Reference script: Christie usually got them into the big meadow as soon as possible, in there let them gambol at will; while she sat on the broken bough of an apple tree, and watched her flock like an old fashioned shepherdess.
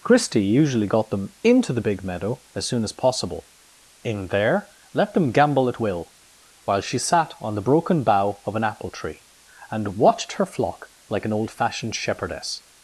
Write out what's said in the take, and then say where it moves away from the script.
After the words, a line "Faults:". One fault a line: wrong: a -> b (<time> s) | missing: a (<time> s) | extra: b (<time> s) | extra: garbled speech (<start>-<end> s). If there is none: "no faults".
Christie usually got them into the big meadow as soon as possible, in there let them gambol at will; while she sat on the broken bough of an apple tree, and watched her flock like an old fashioned shepherdess.
Faults:
no faults